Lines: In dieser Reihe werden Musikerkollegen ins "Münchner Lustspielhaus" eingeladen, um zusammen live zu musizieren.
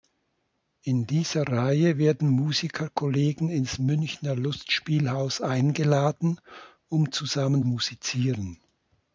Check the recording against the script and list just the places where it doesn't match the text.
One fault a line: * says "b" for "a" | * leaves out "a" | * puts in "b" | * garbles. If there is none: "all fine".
* leaves out "live zu"